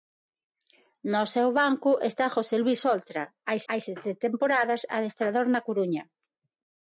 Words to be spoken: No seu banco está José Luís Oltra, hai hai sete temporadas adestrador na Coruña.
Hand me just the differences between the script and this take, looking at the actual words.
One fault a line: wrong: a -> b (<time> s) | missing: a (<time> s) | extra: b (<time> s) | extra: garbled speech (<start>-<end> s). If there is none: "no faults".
no faults